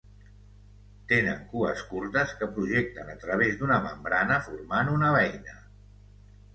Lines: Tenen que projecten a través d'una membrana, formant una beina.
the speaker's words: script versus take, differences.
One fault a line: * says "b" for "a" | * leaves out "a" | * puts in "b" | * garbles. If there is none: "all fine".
* puts in "cues curtes"